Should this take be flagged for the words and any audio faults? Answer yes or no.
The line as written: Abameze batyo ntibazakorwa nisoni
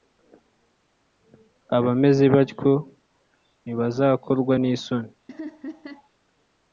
yes